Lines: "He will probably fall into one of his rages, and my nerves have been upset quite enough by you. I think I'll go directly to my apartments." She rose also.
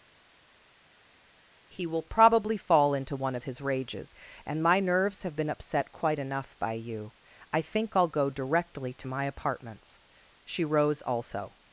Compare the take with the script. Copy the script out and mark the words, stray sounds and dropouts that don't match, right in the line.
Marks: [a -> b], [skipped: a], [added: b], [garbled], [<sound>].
"He will probably fall into one of his rages, and my nerves have been upset quite enough by you. I think I'll go directly to my apartments." She rose also.